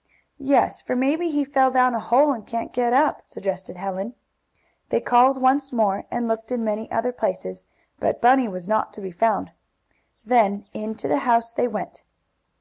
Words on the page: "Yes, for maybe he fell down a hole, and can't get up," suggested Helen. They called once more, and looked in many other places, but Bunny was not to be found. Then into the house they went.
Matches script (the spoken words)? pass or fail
pass